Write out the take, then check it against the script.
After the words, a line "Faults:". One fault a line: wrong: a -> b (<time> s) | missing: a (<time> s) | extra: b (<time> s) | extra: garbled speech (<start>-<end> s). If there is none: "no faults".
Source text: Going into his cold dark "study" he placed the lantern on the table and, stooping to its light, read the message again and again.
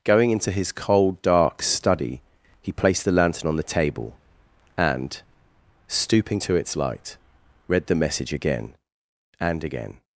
Going into his cold dark "study" he placed the lantern on the table and, stooping to its light, read the message again and again.
Faults:
no faults